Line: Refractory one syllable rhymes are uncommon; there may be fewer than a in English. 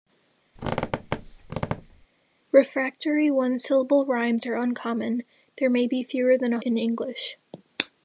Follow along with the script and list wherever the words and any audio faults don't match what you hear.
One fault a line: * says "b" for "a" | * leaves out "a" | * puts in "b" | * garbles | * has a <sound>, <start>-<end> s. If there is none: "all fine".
* has a squeak, 0.6-2.1 s